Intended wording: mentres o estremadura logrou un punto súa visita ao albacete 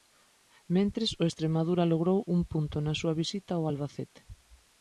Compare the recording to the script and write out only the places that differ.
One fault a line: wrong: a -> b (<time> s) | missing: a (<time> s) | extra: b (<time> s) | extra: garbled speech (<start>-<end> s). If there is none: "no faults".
extra: na (2.8 s)